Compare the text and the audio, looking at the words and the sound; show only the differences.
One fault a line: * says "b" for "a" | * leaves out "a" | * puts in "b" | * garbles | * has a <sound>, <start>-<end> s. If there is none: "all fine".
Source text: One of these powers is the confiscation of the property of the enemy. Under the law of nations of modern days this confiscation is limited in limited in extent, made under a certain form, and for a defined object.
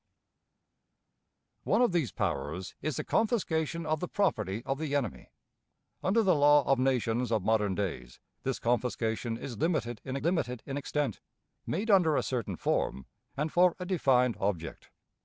all fine